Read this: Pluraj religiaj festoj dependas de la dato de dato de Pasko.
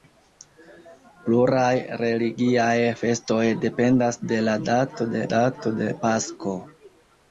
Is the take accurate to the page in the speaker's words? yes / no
yes